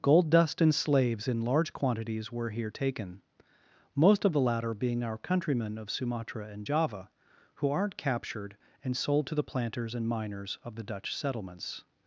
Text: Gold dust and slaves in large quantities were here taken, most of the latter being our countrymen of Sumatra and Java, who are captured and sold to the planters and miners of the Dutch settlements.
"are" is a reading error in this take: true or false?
true